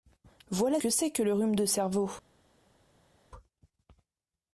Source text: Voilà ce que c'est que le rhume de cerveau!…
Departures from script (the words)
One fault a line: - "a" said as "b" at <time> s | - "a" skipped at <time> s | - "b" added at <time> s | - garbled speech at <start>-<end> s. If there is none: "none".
- "ce" skipped at 0.8 s